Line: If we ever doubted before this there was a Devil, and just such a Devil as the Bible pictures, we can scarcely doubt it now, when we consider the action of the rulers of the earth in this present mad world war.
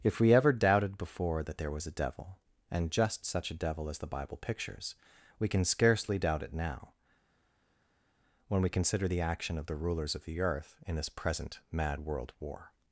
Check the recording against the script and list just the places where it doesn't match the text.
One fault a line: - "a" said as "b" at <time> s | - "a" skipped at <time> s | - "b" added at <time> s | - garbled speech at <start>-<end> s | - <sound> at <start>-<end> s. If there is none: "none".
- "this" said as "that" at 1.4 s